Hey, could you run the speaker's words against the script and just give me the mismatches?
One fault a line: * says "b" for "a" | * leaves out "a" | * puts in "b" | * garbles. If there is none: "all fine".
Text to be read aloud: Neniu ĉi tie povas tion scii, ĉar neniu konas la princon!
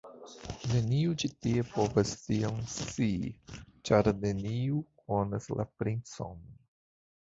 all fine